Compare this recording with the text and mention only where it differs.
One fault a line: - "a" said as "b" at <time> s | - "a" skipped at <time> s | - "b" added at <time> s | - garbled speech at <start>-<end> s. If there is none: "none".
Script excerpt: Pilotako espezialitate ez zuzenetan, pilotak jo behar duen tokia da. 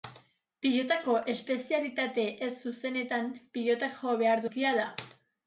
- "duen" skipped at 4.5 s